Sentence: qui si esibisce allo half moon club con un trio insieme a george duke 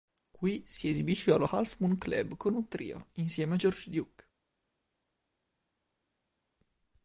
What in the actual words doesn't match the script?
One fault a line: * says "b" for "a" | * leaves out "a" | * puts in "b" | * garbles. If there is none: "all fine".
all fine